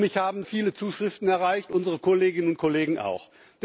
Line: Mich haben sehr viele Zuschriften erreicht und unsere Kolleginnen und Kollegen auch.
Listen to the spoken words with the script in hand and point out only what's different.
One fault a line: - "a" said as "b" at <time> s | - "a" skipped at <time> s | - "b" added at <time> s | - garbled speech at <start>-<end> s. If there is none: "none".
- "sehr" skipped at 0.4 s
- "und" skipped at 1.7 s